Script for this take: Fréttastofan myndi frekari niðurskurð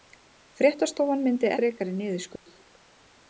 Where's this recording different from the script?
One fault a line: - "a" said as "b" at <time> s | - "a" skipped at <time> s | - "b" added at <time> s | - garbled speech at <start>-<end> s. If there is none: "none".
none